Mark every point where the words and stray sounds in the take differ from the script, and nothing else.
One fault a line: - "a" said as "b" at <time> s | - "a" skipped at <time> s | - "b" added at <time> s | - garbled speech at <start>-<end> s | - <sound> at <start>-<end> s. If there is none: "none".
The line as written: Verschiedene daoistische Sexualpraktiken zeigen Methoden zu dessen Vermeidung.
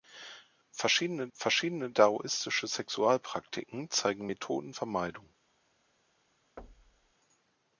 - "verschiedene" added at 1.3 s
- "zu dessen" skipped at 4.7 s
- thud at 6.6-7.1 s